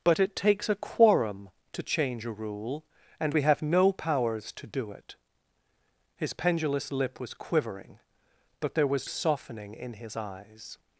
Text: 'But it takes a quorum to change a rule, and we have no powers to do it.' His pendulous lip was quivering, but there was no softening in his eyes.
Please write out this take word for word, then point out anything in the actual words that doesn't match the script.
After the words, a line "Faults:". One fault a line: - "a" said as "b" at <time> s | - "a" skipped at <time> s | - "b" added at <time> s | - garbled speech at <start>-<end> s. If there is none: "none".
'But it takes a quorum to change a rule, and we have no powers to do it.' His pendulous lip was quivering, but there was softening in his eyes.
Faults:
- "no" skipped at 9.1 s